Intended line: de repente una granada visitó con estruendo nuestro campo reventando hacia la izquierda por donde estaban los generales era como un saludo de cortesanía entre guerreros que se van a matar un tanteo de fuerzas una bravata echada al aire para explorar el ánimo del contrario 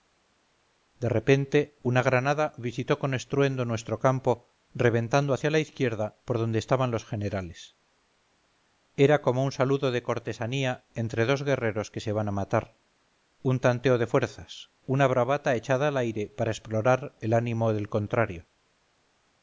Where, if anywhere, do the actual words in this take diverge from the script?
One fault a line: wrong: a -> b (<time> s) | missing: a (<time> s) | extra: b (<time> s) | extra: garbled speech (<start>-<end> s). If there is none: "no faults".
extra: dos (11.2 s)